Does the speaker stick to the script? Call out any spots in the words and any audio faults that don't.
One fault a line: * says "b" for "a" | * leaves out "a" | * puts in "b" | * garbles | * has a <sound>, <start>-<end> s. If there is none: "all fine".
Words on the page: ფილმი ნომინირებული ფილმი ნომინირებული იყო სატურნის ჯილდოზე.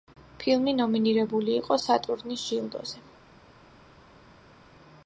* leaves out "ფილმი ნომინირებული"